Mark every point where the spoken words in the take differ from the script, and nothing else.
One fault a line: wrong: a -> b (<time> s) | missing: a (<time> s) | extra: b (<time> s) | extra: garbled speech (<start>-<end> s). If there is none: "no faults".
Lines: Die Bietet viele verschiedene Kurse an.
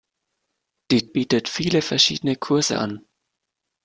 no faults